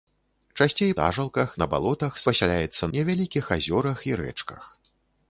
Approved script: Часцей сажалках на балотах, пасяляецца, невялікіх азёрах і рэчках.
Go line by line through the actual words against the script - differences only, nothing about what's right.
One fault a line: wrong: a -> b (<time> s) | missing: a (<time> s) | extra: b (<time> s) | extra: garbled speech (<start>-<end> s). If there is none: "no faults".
no faults